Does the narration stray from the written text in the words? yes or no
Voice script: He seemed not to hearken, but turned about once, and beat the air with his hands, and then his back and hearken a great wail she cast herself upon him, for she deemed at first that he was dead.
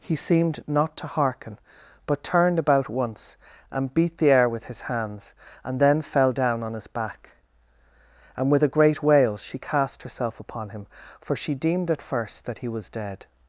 yes